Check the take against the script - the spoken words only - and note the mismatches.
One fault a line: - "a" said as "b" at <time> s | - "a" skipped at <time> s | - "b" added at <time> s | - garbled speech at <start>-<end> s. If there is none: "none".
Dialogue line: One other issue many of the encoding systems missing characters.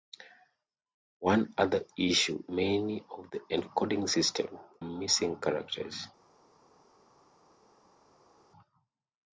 none